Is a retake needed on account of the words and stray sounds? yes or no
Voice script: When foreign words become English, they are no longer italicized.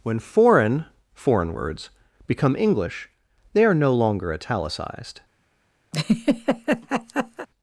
yes